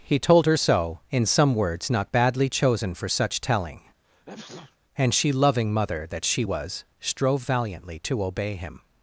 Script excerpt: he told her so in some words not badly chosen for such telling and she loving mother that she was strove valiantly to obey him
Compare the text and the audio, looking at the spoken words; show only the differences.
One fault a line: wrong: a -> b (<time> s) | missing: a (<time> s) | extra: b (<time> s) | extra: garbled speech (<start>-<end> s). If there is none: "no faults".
no faults